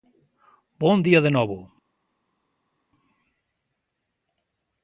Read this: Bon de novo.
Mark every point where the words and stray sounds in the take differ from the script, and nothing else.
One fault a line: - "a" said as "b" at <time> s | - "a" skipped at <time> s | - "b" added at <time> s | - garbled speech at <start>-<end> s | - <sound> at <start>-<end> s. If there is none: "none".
- "día" added at 1.0 s